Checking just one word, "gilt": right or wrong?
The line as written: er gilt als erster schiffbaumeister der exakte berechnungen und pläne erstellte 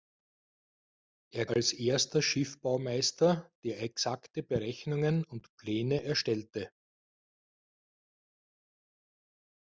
wrong